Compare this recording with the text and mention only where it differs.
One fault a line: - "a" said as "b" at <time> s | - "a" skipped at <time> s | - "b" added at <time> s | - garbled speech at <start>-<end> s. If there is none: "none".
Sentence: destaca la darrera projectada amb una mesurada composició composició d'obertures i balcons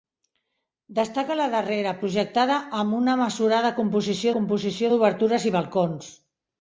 none